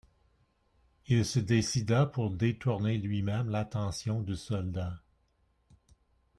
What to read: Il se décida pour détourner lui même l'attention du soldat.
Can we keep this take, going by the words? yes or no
yes